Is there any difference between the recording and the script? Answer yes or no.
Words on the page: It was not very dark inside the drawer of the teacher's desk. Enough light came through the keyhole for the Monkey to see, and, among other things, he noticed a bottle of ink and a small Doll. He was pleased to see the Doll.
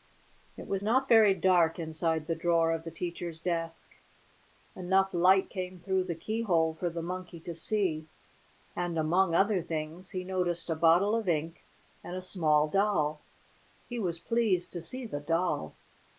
no